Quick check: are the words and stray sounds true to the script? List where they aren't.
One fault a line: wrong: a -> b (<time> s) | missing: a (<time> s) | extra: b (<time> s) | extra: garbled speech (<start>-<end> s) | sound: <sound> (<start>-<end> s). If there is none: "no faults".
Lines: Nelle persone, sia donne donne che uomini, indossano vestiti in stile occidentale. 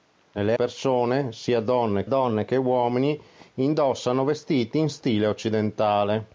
no faults